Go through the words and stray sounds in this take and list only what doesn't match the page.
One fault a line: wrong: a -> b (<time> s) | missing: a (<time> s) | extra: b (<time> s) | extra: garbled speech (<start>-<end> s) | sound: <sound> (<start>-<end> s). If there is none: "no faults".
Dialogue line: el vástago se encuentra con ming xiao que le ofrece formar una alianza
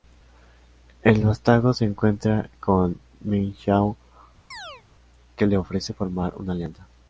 sound: chirp (4.5-4.8 s)